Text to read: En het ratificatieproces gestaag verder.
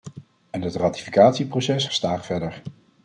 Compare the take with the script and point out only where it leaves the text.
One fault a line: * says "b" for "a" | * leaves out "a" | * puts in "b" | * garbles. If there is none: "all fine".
all fine